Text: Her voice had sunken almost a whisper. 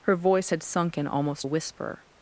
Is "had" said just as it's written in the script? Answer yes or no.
yes